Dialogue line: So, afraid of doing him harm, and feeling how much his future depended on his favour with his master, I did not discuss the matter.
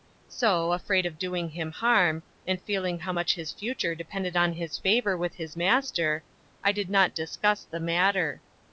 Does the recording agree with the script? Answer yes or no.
yes